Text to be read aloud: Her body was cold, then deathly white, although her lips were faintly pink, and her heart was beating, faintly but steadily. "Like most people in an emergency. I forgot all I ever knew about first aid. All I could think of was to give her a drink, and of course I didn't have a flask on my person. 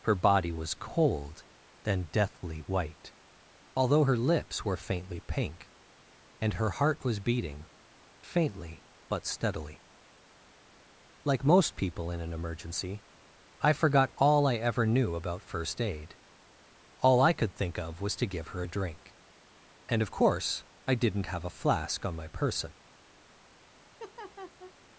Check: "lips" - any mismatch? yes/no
no